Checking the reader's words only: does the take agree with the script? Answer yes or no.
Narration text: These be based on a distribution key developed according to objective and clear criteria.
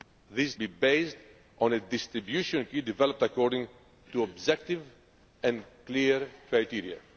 yes